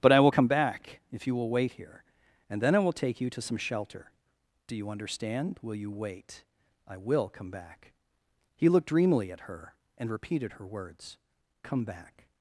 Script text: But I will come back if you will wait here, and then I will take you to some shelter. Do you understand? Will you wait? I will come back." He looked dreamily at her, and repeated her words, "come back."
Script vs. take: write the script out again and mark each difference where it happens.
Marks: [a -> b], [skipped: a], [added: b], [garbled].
But I will come back if you will wait here, and then I will take you to some shelter. Do you understand? Will you wait? I will come back." He looked dreamily at her, and repeated her words, "come back."